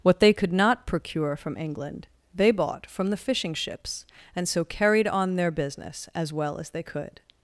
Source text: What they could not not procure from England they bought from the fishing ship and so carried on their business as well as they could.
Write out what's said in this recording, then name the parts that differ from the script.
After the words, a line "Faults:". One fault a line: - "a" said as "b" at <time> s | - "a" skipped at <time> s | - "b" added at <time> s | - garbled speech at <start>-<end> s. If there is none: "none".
What they could not procure from England they bought from the fishing ships and so carried on their business as well as they could.
Faults:
- "not" skipped at 0.9 s
- "ship" said as "ships" at 3.5 s